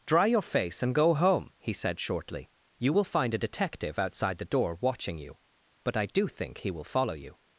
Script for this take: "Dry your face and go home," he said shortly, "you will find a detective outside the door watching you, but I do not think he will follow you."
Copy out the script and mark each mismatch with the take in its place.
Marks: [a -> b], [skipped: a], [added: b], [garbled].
"Dry your face and go home," he said shortly, "you will find a detective outside the door watching you, but I do [skipped: not] think he will follow you."